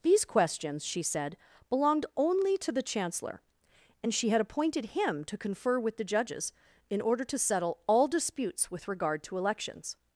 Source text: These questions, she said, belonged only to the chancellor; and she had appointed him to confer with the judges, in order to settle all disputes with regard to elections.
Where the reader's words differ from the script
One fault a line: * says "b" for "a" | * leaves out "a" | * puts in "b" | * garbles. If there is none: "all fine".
all fine